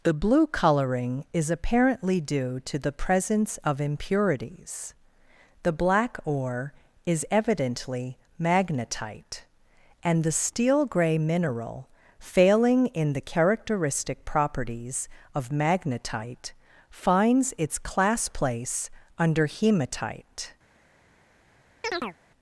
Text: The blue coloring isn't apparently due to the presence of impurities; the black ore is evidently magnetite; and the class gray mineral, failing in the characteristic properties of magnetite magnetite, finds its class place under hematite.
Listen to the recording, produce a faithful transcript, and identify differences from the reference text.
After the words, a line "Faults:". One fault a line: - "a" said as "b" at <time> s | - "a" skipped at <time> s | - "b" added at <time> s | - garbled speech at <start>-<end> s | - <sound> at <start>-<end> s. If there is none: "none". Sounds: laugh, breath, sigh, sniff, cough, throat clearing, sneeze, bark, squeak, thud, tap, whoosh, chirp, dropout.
The blue coloring is apparently due to the presence of impurities; the black ore is evidently magnetite; and the steel gray mineral, failing in the characteristic properties of magnetite, finds its class place under hematite.
Faults:
- "isn't" said as "is" at 1.3 s
- "class" said as "steel" at 10.3 s
- "magnetite" skipped at 16.5 s
- chirp at 21.8-22.2 s